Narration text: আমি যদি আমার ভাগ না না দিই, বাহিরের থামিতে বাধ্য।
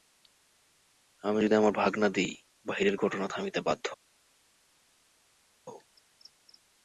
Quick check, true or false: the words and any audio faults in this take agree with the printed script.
false